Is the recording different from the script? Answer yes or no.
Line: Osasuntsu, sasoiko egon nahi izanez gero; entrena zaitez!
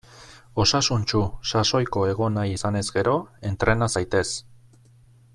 no